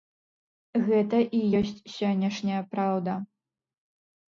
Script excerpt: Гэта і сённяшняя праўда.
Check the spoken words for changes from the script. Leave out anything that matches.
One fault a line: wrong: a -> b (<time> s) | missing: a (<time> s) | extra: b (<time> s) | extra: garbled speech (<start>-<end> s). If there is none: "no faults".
extra: ёсць (1.6 s)